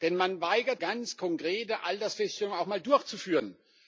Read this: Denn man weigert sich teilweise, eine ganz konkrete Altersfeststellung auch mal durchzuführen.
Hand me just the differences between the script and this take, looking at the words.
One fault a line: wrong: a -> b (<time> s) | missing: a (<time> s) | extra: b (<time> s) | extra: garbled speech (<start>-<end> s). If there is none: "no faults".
missing: sich teilweise eine (0.8 s)